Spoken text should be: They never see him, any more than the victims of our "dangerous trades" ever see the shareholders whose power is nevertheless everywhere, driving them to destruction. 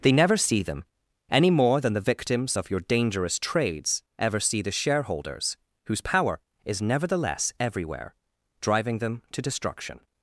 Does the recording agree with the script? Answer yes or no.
no